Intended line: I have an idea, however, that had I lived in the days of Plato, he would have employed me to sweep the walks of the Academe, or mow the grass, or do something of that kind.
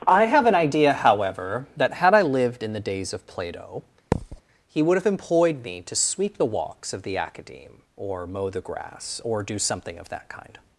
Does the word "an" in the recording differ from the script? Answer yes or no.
no